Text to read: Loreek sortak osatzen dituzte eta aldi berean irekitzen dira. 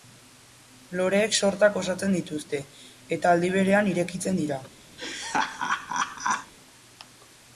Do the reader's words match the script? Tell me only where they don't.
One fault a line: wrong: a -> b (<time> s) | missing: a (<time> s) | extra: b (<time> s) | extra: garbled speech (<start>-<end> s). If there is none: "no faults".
no faults